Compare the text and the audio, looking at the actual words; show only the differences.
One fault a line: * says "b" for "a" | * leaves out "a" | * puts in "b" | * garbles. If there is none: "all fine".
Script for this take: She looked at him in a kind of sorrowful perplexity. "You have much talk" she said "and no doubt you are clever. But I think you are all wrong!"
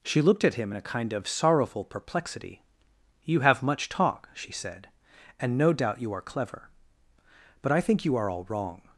all fine